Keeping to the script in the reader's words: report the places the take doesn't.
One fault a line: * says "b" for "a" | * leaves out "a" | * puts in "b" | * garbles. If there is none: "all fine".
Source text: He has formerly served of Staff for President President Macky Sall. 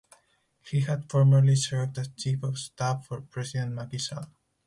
* says "had" for "has"
* puts in "as Chief"
* leaves out "President"